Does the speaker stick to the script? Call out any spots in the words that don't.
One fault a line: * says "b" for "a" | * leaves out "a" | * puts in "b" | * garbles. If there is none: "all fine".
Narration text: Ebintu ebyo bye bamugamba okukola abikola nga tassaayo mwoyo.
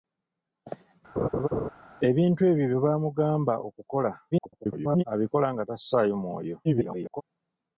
* garbles
* garbles